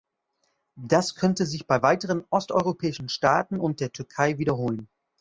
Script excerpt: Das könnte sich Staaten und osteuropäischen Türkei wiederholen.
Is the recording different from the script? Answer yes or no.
yes